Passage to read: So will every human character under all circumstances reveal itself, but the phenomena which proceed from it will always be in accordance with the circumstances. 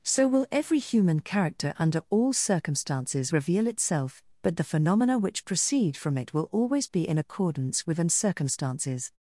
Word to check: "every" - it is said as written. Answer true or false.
true